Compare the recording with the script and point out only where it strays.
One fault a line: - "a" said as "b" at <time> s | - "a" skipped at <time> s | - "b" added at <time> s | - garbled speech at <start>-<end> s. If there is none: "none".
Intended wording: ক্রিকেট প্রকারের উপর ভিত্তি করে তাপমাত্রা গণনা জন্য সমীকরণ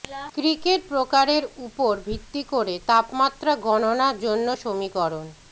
none